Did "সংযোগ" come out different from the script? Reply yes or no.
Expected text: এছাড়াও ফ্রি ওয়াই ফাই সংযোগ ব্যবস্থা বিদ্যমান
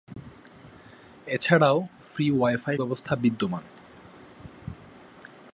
yes